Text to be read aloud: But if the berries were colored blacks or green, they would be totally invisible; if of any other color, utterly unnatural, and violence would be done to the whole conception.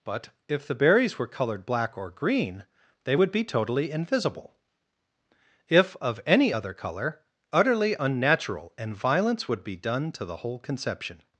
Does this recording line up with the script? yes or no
no